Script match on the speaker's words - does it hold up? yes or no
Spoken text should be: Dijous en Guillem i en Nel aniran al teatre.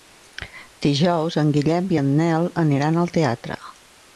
yes